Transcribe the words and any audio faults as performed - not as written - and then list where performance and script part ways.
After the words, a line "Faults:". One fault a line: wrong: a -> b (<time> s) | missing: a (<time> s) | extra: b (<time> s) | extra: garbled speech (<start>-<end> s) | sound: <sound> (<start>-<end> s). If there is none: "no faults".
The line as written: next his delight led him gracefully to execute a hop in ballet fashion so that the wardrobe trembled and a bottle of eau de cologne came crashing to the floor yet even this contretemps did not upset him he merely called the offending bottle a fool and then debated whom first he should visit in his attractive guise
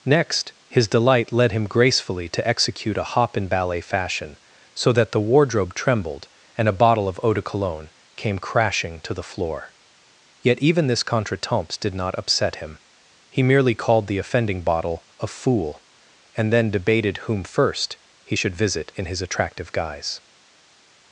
next his delight led him gracefully to execute a hop in ballet fashion so that the wardrobe trembled and a bottle of eau de cologne came crashing to the floor yet even this contretemps did not upset him he merely called the offending bottle a fool and then debated whom first he should visit in his attractive guise
Faults:
no faults